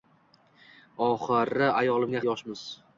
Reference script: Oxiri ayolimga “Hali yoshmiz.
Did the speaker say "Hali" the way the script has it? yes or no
no